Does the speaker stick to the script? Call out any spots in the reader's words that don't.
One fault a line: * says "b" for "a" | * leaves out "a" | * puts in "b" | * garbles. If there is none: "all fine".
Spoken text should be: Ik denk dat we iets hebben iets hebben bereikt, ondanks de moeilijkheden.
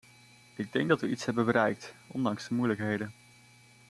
* leaves out "iets hebben"